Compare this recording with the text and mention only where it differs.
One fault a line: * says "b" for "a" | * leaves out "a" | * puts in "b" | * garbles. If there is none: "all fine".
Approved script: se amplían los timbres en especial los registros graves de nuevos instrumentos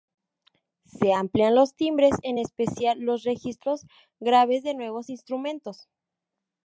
all fine